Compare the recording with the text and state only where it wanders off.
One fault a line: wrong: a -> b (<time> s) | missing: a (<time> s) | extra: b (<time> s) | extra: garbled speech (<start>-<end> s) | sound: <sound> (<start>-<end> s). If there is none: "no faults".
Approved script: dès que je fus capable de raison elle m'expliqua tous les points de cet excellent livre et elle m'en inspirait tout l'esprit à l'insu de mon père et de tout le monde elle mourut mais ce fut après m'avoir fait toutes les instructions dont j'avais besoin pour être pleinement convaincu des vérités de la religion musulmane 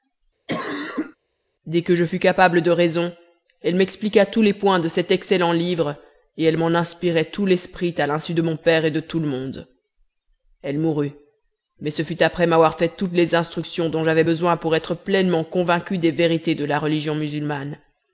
sound: cough (0.5-1.2 s)